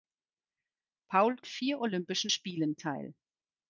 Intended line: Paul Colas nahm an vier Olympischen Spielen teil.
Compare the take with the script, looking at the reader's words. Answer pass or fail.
fail